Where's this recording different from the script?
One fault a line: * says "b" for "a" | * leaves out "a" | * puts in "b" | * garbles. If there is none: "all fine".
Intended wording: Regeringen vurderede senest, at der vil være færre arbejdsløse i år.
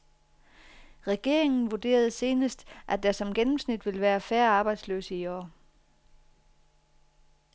* puts in "som gennemsnit"